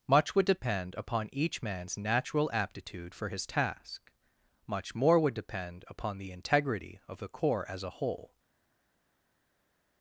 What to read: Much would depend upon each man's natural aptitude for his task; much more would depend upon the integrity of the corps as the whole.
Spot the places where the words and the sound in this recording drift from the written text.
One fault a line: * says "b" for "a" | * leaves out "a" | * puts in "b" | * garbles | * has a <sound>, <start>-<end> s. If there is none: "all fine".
* says "a" for "the"